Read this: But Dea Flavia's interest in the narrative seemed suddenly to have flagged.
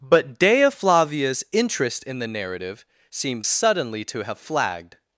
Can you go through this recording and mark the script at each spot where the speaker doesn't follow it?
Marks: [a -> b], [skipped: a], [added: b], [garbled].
But Dea Flavia's interest in the narrative seemed suddenly to have flagged.